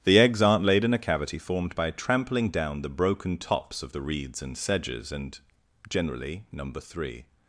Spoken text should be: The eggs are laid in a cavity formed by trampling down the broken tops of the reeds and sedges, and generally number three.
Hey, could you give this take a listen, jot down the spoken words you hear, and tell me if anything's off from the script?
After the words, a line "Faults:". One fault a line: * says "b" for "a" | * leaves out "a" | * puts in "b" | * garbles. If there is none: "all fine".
The eggs aren't laid in a cavity formed by trampling down the broken tops of the reeds and sedges, and generally number three.
Faults:
* says "aren't" for "are"